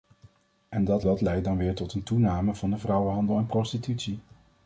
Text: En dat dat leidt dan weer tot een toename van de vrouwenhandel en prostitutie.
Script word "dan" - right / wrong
right